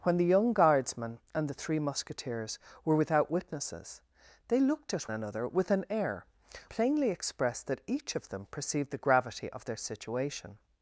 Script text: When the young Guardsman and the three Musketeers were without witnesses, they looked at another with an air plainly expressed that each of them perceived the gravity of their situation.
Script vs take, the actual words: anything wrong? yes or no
no